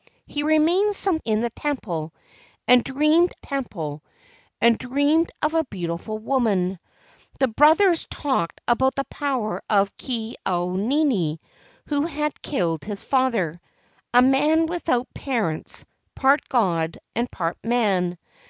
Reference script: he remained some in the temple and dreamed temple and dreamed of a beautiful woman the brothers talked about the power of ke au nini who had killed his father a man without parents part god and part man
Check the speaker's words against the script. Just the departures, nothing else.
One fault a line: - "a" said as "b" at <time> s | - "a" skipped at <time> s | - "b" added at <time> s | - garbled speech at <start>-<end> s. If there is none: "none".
none